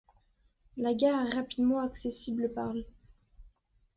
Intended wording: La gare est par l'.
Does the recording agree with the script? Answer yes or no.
no